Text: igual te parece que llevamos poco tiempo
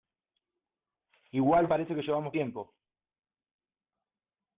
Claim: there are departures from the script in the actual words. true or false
true